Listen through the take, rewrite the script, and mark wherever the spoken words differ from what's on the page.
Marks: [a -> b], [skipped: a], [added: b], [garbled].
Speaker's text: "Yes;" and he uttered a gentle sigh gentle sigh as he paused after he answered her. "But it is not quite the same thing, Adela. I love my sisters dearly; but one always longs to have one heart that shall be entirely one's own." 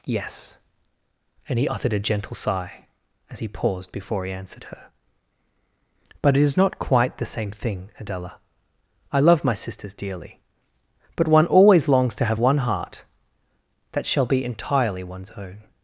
"Yes;" and he uttered a gentle sigh [skipped: gentle sigh] as he paused [after -> before] he answered her. "But it is not quite the same thing, Adela. I love my sisters dearly; but one always longs to have one heart that shall be entirely one's own."